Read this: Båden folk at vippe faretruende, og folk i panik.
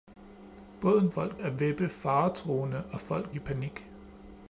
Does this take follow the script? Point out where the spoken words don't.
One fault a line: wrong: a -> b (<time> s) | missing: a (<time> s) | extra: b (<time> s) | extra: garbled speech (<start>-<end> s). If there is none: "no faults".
no faults